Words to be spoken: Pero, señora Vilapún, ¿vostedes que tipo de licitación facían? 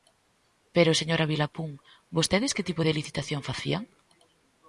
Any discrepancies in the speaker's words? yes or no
no